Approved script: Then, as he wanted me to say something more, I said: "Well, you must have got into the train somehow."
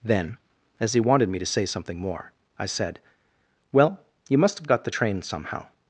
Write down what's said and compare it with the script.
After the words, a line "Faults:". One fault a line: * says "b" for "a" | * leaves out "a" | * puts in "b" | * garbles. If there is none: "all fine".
Then, as he wanted me to say something more, I said: "Well, you must have got the train somehow."
Faults:
* leaves out "into"